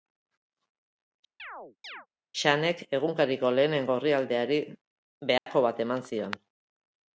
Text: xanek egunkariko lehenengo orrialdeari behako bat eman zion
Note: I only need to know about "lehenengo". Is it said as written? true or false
true